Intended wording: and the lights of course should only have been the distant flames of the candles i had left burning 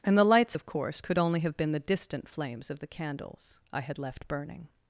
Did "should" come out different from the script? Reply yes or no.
yes